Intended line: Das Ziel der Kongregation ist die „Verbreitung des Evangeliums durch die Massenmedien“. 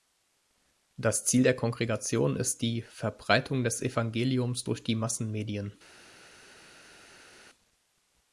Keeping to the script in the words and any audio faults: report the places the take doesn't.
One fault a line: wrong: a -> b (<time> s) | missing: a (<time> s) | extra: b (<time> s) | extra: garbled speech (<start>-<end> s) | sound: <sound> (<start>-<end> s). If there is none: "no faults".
no faults